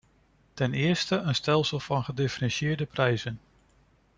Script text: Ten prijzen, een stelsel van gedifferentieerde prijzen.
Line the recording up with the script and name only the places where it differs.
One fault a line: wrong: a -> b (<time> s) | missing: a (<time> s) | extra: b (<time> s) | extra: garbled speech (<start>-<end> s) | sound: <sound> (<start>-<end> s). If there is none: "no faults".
wrong: prijzen -> eerste (0.7 s)